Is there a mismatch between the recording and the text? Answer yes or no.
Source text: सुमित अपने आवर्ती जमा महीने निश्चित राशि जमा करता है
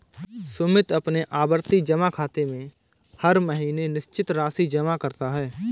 yes